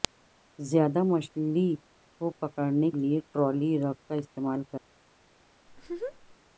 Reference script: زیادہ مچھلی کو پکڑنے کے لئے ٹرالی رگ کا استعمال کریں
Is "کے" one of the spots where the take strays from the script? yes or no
yes